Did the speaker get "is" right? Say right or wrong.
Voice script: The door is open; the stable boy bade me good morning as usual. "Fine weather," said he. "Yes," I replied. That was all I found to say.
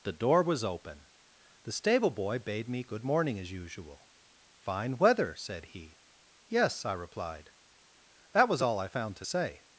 wrong